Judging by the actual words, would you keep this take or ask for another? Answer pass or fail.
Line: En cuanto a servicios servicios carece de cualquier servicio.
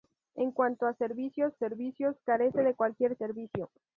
pass